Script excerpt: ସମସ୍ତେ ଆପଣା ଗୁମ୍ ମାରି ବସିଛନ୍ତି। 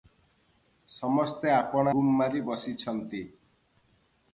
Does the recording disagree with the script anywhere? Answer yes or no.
no